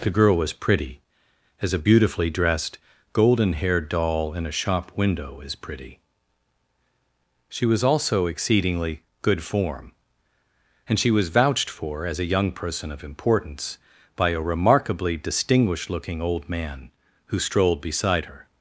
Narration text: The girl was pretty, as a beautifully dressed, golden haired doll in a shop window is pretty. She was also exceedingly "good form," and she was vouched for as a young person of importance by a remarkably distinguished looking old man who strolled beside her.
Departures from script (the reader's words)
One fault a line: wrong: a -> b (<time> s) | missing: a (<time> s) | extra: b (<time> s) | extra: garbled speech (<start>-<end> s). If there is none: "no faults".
no faults